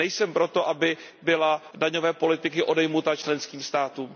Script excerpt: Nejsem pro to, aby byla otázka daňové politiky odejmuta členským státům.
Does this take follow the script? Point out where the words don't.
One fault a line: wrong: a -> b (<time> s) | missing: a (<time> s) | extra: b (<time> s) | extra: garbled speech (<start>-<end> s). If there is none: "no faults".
missing: otázka (1.6 s)